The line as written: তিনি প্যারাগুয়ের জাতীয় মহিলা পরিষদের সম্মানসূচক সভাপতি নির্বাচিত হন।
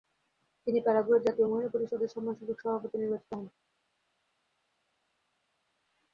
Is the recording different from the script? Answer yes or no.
no